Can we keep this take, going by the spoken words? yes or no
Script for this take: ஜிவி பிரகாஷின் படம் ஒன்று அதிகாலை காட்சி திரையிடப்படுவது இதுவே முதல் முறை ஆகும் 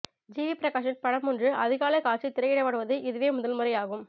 yes